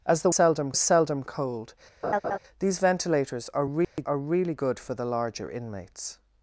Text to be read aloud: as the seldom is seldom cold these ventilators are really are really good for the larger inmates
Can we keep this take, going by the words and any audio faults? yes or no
no